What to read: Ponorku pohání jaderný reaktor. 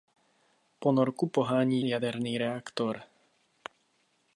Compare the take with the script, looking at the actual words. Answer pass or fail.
pass